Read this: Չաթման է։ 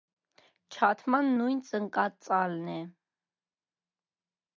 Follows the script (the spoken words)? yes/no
no